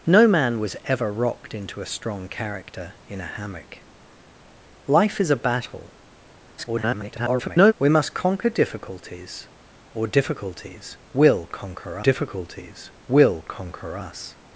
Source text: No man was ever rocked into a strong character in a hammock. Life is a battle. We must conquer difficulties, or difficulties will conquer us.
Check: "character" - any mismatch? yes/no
no